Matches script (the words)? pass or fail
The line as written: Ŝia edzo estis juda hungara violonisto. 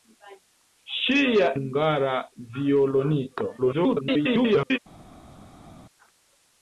fail